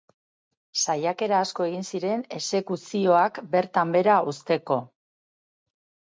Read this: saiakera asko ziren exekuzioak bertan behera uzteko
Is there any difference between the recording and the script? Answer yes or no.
yes